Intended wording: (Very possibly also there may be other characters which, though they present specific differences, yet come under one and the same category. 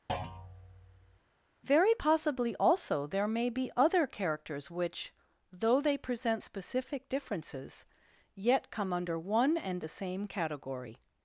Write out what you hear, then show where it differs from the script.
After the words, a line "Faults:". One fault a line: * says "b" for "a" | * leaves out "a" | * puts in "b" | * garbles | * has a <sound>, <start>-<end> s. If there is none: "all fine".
(Very possibly also there may be other characters which, though they present specific differences, yet come under one and the same category.
Faults:
* has a thud, 0.1-1.2 s